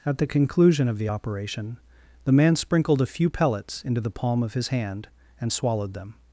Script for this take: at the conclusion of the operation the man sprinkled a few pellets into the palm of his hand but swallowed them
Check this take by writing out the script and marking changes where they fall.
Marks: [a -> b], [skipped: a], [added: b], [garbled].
at the conclusion of the operation the man sprinkled a few pellets into the palm of his hand [but -> and] swallowed them